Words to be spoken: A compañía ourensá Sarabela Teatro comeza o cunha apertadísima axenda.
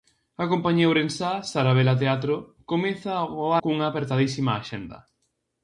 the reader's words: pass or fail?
pass